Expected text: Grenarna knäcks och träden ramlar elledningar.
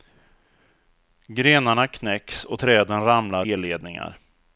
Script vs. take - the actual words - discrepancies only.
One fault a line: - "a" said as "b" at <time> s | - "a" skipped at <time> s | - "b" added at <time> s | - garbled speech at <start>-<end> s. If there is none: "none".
none